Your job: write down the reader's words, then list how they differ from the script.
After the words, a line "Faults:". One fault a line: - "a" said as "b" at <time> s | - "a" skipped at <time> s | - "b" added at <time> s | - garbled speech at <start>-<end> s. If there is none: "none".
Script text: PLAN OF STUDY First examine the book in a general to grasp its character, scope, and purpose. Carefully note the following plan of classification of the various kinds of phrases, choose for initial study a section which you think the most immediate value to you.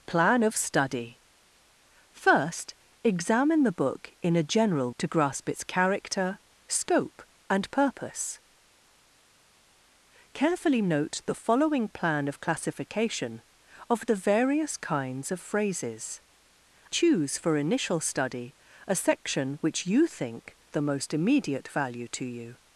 PLAN OF STUDY First examine the book in a general to grasp its character, scope, and purpose. Carefully note the following plan of classification of the various kinds of phrases, choose for initial study a section which you think the most immediate value to you.
Faults:
none